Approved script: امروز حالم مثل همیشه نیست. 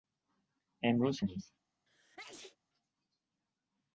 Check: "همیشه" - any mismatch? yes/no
yes